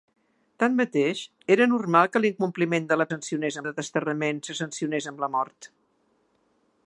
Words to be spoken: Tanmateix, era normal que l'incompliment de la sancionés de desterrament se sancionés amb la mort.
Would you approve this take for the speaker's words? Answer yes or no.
yes